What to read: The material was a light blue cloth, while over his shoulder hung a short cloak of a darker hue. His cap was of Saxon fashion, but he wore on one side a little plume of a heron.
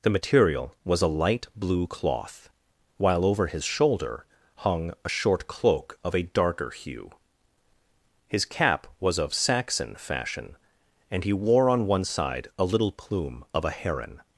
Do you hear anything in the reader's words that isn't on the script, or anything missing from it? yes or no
yes